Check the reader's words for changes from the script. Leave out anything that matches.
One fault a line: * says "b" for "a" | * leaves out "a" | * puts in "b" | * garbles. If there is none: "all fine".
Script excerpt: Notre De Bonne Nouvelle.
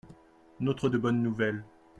all fine